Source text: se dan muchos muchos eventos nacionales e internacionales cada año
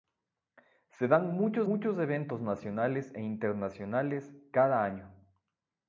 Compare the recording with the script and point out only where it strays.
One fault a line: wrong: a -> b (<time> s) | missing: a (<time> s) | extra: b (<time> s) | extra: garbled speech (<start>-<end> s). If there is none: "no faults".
no faults